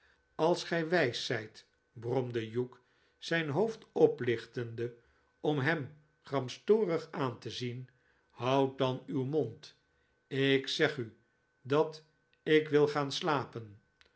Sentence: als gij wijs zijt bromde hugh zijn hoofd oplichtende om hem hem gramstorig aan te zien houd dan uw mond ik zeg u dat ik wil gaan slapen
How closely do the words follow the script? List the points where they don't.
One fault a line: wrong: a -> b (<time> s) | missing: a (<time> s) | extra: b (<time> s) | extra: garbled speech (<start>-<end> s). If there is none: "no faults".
missing: hem (6.0 s)